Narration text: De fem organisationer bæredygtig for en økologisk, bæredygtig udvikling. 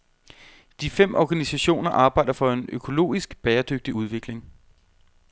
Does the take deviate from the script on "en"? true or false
false